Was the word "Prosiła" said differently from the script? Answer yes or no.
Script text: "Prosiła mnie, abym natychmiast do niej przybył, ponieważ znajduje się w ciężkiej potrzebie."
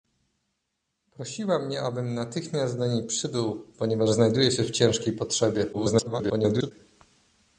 no